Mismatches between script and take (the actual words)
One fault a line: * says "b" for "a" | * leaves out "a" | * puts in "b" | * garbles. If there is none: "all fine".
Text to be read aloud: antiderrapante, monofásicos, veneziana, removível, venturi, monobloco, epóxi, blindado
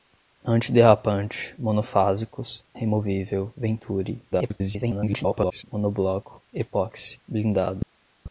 * leaves out "veneziana"
* garbles